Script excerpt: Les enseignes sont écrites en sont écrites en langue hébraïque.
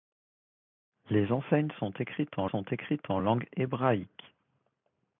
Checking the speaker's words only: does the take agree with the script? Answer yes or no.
yes